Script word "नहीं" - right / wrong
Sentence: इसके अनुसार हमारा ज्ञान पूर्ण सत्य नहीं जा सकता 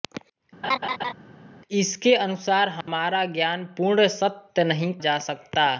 right